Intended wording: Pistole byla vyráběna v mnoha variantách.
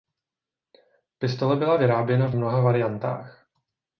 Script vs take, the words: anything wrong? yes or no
no